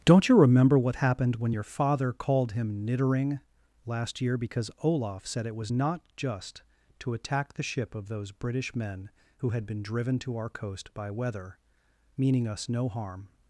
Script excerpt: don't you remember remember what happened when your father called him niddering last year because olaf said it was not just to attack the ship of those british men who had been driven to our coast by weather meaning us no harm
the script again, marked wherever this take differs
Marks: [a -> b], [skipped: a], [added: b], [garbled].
don't you remember [skipped: remember] what happened when your father called him niddering last year because olaf said it was not just to attack the ship of those british men who had been driven to our coast by weather meaning us no harm